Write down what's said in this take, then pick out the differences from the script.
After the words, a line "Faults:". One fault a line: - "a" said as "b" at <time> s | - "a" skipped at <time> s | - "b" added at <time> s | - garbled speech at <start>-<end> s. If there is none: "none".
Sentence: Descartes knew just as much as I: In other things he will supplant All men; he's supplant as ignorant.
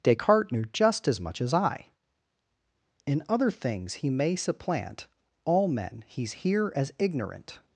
Descartes knew just as much as I: In other things he may supplant All men; he's here as ignorant.
Faults:
- "will" said as "may" at 4.1 s
- "supplant" said as "here" at 6.3 s